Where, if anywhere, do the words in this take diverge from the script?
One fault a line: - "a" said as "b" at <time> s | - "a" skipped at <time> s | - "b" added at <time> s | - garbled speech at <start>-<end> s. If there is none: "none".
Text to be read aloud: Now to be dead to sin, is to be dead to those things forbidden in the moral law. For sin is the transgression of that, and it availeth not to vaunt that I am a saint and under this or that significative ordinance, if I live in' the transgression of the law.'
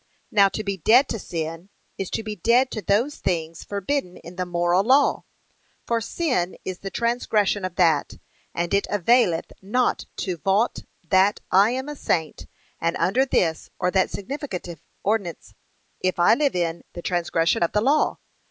none